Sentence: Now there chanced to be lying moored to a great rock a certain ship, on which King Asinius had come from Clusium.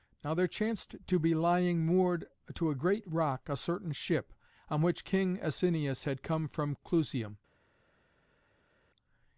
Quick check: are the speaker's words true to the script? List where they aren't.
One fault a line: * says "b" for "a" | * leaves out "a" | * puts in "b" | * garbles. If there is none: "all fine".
all fine